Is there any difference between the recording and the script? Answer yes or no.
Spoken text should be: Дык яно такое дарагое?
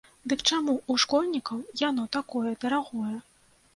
yes